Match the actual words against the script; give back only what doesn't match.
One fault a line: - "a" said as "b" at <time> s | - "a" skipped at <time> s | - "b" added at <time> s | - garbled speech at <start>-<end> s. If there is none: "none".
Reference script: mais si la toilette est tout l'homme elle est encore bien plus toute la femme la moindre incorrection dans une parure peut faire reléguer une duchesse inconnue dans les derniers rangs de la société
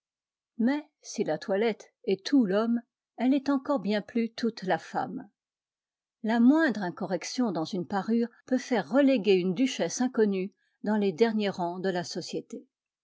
none